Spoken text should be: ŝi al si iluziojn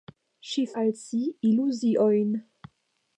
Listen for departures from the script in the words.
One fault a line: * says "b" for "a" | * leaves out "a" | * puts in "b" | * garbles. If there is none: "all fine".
all fine